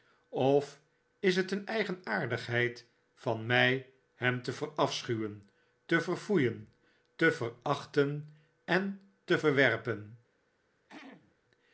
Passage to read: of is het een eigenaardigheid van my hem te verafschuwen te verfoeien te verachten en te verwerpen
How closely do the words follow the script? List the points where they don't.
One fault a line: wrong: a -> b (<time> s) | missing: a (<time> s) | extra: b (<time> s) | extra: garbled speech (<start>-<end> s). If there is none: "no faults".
no faults